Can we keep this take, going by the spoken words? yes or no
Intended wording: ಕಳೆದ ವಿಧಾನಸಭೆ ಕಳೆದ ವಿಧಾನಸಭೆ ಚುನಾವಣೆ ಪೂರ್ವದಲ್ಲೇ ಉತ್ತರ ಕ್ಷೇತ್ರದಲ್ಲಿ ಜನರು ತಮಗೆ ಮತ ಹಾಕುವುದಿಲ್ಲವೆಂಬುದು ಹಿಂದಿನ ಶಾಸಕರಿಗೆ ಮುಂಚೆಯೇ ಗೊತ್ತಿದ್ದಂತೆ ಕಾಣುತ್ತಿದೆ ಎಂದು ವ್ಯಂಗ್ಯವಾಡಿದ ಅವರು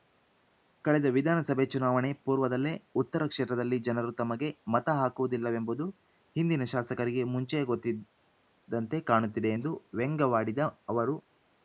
no